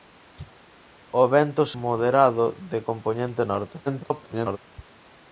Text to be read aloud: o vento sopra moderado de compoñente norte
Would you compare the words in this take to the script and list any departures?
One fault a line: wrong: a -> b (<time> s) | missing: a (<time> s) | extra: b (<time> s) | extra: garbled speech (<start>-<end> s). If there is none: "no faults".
missing: sopra (1.6 s)
extra: garbled speech (3.9-4.6 s)